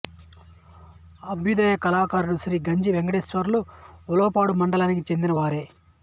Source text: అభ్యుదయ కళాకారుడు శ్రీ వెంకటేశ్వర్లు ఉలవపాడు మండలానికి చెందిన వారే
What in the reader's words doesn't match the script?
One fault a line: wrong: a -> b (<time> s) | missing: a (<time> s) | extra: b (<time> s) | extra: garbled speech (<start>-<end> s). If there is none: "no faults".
extra: గంజి (2.7 s)